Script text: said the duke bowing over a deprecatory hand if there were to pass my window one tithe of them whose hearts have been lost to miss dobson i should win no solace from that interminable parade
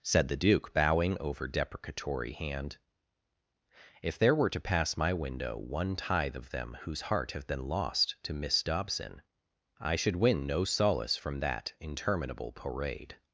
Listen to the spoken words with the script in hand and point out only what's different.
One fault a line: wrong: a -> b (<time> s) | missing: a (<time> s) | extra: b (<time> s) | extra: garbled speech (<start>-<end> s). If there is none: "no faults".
missing: a (1.5 s)
wrong: hearts -> heart (7.0 s)